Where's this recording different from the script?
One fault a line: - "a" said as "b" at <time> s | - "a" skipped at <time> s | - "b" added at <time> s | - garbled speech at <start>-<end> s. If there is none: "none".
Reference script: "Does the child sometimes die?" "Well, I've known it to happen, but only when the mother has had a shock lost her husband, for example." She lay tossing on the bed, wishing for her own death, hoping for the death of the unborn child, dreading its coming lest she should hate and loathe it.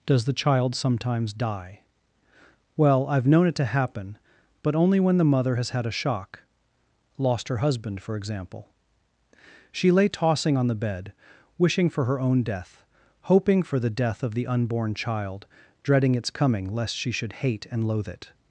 none